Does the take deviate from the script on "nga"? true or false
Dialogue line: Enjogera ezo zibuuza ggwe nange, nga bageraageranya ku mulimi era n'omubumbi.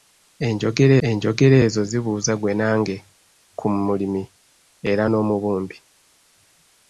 true